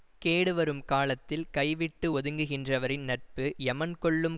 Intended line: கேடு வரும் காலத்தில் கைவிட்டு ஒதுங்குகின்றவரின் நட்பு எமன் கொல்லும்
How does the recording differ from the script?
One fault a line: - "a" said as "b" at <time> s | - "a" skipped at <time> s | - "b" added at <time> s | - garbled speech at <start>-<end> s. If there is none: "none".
none